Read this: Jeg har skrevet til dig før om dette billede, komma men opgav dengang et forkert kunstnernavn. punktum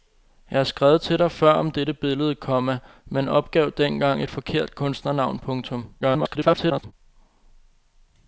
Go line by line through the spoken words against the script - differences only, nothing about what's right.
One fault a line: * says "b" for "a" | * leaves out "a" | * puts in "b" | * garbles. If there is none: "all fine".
* garbles